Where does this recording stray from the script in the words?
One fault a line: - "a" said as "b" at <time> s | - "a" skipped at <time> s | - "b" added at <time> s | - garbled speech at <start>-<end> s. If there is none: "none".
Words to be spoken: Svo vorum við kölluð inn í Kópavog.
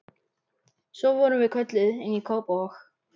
none